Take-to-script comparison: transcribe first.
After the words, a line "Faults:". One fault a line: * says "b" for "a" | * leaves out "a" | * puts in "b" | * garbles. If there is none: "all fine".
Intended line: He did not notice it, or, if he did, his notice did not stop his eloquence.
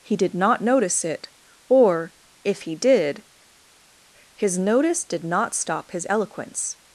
He did not notice it, or, if he did, his notice did not stop his eloquence.
Faults:
all fine